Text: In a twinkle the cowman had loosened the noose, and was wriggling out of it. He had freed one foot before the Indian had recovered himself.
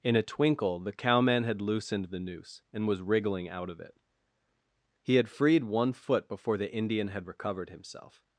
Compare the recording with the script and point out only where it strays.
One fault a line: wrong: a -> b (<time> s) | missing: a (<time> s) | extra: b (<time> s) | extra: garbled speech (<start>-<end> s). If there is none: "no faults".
no faults